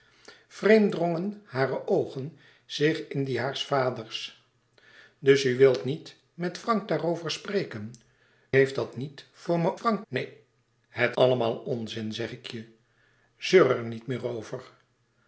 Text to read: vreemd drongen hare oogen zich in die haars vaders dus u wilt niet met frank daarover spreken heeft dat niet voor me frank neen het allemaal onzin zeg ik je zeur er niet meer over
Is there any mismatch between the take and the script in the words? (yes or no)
no